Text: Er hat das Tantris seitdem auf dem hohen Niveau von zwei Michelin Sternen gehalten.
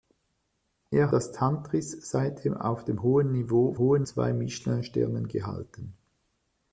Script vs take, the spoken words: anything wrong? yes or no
yes